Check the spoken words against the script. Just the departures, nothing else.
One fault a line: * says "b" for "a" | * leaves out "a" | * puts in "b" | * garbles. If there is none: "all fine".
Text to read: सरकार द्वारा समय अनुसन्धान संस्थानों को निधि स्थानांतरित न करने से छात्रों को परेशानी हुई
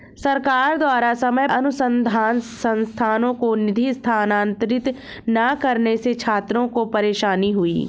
all fine